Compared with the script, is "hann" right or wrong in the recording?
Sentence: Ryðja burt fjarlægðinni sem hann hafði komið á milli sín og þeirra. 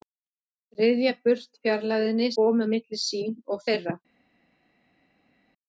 wrong